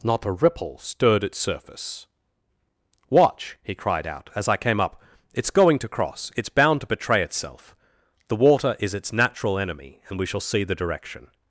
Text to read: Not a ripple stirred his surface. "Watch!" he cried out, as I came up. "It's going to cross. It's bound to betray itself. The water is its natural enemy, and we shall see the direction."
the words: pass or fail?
fail